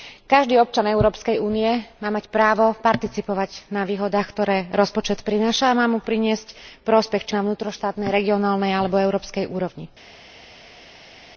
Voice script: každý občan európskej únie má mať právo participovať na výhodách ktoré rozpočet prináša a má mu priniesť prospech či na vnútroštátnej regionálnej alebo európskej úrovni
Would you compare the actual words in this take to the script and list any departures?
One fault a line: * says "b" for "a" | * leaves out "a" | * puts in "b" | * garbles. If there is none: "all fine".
all fine